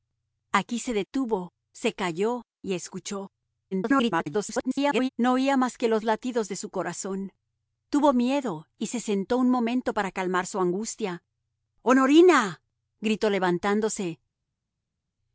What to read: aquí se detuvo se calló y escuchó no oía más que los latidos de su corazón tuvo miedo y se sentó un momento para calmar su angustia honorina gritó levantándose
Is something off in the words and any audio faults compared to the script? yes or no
yes